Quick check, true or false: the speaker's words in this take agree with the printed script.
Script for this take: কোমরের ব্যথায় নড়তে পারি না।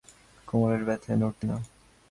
false